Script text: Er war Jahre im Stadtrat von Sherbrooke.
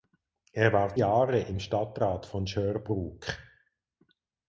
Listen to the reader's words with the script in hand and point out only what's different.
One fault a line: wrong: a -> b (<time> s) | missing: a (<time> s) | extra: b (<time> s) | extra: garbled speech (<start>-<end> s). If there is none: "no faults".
no faults